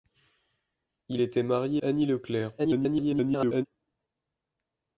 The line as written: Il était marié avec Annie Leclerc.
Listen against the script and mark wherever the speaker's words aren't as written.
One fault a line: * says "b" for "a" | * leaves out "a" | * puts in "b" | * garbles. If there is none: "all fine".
* leaves out "avec"
* garbles